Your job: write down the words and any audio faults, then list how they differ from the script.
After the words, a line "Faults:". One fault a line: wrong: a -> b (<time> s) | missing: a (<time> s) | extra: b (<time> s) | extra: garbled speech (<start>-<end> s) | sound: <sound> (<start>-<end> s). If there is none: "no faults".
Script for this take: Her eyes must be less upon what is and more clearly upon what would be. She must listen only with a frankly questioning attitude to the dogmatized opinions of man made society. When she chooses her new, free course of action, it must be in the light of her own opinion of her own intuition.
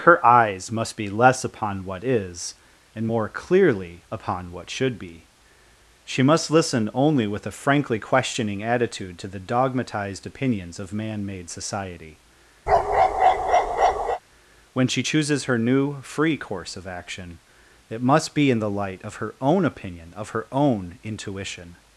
Her eyes must be less upon what is and more clearly upon what should be. She must listen only with a frankly questioning attitude to the dogmatized opinions of man made society. When she chooses her new, free course of action, it must be in the light of her own opinion of her own intuition.
Faults:
wrong: would -> should (4.7 s)
sound: bark (12.7-14.2 s)